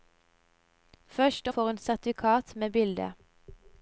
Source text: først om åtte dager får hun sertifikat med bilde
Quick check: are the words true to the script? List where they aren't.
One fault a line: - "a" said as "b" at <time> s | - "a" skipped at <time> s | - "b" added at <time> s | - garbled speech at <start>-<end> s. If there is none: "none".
- "om åtte dager" skipped at 1.5 s